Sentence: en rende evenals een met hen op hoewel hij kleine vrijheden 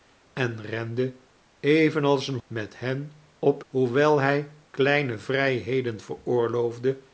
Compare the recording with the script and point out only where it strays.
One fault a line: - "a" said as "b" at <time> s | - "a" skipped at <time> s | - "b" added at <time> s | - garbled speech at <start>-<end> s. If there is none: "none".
none